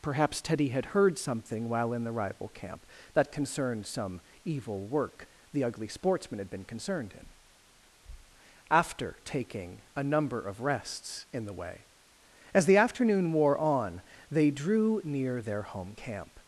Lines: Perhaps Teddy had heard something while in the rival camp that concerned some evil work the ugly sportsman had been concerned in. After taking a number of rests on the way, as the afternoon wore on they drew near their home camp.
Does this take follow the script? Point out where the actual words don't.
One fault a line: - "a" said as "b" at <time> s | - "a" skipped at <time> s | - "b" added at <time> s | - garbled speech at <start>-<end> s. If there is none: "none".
- "on" said as "in" at 11.3 s